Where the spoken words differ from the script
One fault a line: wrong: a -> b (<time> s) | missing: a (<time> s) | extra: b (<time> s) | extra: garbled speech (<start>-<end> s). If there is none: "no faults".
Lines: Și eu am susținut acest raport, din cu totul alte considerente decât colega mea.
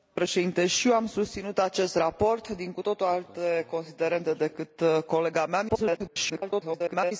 extra: garbled speech (5.7-7.1 s)